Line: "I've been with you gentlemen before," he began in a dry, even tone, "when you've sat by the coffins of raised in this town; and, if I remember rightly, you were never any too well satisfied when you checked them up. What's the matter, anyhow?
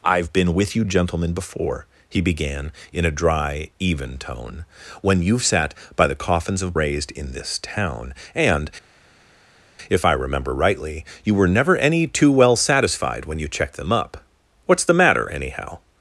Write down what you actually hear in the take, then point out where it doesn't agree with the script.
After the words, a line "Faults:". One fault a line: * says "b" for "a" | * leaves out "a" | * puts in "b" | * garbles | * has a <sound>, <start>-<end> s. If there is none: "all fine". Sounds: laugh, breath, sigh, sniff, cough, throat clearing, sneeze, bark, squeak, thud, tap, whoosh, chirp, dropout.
"I've been with you gentlemen before," he began in a dry, even tone, "when you've sat by the coffins of raised in this town; and, if I remember rightly, you were never any too well satisfied when you checked them up. What's the matter, anyhow?
Faults:
all fine